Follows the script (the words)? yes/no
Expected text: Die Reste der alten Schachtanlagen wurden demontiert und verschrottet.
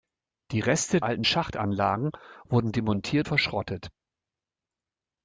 no